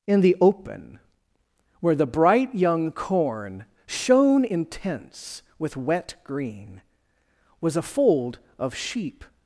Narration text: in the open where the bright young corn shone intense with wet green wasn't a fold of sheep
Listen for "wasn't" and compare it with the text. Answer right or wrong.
wrong